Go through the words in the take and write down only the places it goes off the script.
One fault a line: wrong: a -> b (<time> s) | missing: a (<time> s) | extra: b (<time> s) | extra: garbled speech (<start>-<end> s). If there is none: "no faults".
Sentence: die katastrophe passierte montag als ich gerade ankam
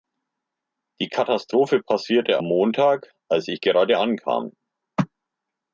no faults